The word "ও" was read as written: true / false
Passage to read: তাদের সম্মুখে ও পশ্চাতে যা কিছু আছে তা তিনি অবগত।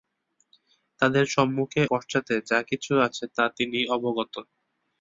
false